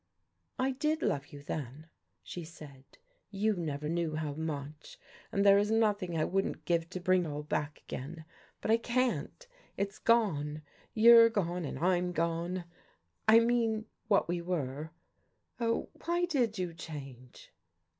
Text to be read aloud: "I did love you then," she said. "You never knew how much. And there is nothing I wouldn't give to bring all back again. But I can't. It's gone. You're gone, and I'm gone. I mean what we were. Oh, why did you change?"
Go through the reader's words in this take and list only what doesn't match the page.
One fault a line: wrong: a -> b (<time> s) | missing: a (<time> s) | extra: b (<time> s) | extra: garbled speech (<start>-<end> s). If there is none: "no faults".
no faults